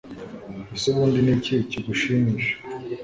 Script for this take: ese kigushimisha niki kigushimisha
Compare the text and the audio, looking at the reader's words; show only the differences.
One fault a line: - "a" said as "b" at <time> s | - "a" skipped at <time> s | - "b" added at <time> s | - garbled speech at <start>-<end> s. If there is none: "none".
- "kigushimisha" said as "ubundi" at 0.9 s